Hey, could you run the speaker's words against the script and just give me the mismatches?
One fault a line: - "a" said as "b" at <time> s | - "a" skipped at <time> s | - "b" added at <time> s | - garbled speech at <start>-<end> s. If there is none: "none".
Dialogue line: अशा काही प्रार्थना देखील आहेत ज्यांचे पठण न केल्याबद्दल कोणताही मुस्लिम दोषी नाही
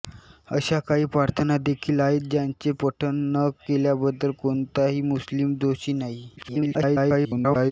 - garbled speech at 6.4-7.7 s